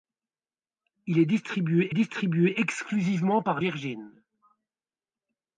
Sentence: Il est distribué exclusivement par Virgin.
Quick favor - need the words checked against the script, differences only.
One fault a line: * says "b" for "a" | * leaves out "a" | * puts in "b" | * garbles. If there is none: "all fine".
* puts in "distribué"